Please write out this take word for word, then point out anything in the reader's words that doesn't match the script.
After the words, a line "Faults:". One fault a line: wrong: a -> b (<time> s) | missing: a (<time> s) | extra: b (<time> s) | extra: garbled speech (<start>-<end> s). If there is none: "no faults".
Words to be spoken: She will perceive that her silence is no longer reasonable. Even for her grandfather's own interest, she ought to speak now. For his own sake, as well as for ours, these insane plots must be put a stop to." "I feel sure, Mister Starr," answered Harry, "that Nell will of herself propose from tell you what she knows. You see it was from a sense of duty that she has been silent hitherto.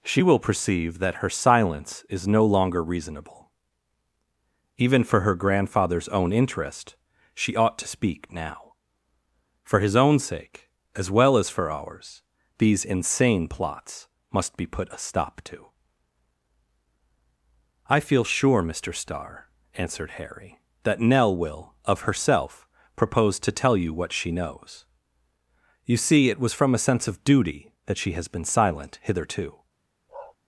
She will perceive that her silence is no longer reasonable. Even for her grandfather's own interest, she ought to speak now. For his own sake, as well as for ours, these insane plots must be put a stop to." "I feel sure, Mister Starr," answered Harry, "that Nell will of herself propose to tell you what she knows. You see it was from a sense of duty that she has been silent hitherto.
Faults:
wrong: from -> to (23.4 s)